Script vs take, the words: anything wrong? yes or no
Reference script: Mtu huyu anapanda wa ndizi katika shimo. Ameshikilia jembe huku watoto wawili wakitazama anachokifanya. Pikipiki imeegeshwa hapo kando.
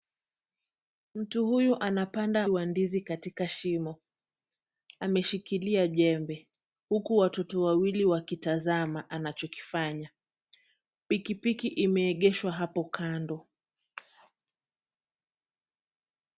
no